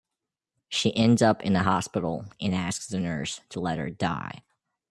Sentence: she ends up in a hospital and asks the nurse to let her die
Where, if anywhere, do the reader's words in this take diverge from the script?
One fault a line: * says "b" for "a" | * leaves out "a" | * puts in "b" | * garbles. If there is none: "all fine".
all fine